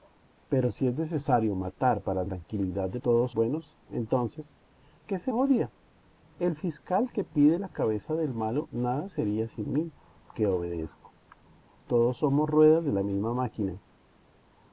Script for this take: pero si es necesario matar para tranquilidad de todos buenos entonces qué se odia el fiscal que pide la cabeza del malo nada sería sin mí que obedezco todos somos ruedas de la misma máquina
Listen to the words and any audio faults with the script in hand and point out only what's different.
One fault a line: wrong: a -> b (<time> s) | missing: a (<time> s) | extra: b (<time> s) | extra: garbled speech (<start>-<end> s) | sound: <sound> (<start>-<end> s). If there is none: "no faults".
no faults